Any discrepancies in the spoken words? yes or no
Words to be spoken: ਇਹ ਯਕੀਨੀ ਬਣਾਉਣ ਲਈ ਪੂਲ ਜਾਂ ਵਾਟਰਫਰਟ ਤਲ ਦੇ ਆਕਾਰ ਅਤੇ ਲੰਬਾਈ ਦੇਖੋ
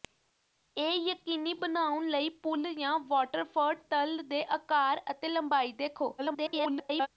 yes